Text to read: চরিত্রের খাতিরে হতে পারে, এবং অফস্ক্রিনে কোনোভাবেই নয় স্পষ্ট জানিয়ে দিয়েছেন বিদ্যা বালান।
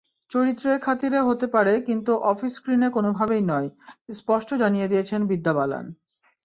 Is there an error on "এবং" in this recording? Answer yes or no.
yes